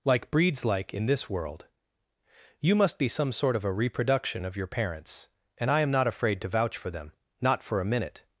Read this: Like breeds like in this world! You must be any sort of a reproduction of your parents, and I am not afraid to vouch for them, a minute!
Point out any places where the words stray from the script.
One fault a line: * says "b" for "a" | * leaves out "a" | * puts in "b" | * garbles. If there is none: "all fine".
* says "some" for "any"
* puts in "not for"